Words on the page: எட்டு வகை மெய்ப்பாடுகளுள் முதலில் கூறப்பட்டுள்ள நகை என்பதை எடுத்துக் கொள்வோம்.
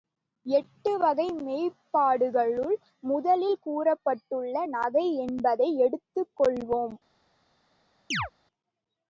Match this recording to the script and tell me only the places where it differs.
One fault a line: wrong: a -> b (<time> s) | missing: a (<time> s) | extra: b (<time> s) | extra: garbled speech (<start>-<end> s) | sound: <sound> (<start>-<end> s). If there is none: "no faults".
sound: chirp (8.1-8.3 s)